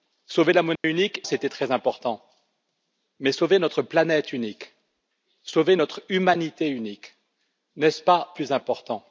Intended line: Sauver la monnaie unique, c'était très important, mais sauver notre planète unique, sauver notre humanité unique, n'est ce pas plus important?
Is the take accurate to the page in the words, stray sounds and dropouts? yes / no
no